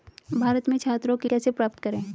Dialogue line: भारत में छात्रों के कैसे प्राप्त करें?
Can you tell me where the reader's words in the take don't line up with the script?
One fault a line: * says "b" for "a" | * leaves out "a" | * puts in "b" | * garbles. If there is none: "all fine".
all fine